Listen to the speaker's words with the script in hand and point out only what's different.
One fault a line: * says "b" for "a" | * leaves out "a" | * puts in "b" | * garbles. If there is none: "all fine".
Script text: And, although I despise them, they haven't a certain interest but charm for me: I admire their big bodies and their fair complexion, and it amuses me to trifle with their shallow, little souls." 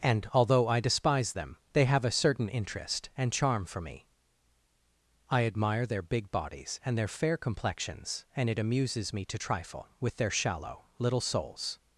* says "have" for "haven't"
* says "and" for "but"
* says "complexions" for "complexion"